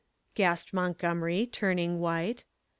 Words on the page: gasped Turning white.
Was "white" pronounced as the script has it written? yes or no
yes